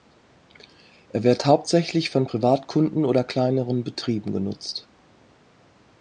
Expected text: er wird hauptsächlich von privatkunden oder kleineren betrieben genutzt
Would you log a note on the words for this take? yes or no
no